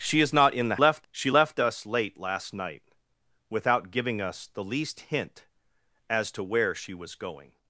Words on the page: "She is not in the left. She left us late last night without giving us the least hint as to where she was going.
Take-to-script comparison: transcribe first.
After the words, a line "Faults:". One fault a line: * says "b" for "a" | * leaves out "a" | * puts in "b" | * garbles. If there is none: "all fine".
"She is not in the left. She left us late last night without giving us the least hint as to where she was going.
Faults:
all fine